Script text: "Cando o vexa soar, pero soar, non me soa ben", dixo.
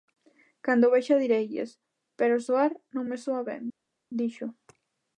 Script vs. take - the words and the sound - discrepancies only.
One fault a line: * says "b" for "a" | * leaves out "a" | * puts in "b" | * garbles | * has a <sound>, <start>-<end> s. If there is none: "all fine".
* says "direilles" for "soar"